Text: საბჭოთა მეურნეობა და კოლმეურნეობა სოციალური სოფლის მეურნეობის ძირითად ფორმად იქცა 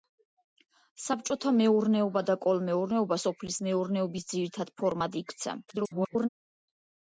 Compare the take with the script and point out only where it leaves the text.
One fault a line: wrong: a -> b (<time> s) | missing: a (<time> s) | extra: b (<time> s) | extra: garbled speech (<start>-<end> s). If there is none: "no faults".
missing: სოციალური (3.2 s)
extra: garbled speech (5.7-6.3 s)